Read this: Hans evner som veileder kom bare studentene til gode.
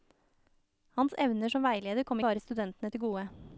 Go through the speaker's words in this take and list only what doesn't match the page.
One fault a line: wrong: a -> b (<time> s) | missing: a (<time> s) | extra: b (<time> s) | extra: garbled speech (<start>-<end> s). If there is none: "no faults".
no faults